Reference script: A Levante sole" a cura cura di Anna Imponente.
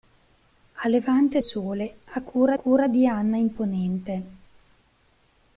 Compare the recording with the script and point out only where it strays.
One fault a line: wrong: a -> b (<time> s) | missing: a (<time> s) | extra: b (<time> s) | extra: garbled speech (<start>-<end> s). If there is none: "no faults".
no faults